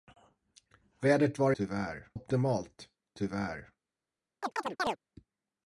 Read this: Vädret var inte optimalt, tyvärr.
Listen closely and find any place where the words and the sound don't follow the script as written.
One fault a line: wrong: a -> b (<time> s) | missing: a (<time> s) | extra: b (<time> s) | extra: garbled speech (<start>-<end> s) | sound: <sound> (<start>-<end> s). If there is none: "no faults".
wrong: inte -> tyvärr (1.6 s)
sound: chirp (4.4-5.0 s)